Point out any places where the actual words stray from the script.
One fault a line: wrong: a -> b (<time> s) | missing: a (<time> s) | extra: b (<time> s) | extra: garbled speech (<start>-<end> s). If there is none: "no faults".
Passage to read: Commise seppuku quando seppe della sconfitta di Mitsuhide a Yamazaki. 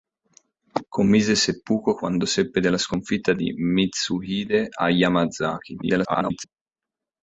extra: garbled speech (5.8-6.4 s)